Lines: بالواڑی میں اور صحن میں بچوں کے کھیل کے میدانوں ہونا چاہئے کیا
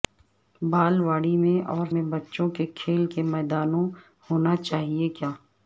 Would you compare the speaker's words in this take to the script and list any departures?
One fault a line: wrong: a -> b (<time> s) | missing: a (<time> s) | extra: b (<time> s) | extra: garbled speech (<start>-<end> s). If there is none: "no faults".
missing: صحن (1.9 s)